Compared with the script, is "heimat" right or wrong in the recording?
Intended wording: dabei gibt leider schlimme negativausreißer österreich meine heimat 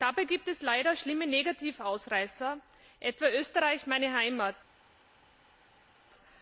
right